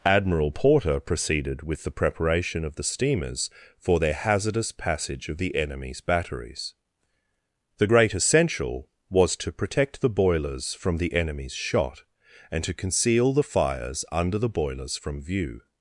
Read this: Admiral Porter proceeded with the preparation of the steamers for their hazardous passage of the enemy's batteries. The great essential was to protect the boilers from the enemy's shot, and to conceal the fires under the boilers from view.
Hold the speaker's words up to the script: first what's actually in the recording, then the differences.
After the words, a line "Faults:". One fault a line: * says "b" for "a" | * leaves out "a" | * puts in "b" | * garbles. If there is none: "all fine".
Admiral Porter proceeded with the preparation of the steamers for their hazardous passage of the enemy's batteries. The great essential was to protect the boilers from the enemy's shot, and to conceal the fires under the boilers from view.
Faults:
all fine